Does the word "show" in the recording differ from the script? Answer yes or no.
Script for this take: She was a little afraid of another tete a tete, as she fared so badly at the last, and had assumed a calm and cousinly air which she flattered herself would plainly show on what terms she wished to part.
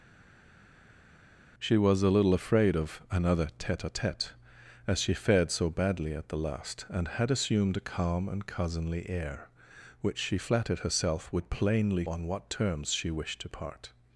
yes